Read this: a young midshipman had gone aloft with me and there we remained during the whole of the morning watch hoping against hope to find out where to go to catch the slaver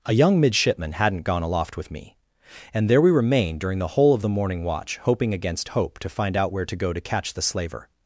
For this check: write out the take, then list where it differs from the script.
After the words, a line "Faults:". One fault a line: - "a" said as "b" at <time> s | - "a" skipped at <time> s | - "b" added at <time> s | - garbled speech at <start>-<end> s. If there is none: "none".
a young midshipman hadn't gone aloft with me and there we remained during the whole of the morning watch hoping against hope to find out where to go to catch the slaver
Faults:
- "had" said as "hadn't" at 0.9 s